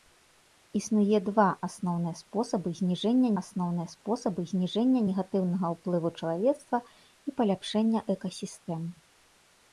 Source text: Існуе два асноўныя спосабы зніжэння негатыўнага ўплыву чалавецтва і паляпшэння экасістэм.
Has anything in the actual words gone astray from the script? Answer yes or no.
yes